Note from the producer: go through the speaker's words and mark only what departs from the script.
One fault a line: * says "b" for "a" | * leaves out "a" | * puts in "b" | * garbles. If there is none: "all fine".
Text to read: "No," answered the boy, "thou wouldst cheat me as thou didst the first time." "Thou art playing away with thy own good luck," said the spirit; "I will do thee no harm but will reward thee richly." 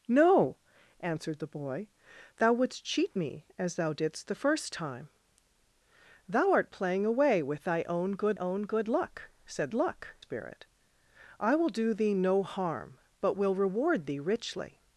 * puts in "own good"
* says "luck" for "the"